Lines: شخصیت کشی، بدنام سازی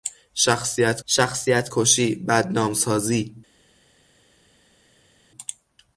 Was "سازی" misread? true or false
false